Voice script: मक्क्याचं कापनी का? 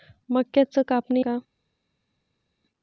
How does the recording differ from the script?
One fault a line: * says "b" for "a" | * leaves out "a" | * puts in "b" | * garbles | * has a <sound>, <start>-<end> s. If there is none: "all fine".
all fine